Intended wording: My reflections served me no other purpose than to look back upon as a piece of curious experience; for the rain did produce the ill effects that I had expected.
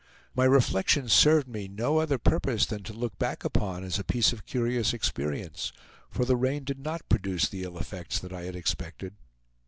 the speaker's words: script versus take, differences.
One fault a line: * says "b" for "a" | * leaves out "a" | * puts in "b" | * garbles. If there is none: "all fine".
* puts in "not"